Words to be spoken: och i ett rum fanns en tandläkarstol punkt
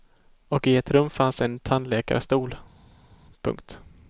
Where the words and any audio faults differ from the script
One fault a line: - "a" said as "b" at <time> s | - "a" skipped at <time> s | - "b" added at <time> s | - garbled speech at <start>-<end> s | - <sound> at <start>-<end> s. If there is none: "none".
none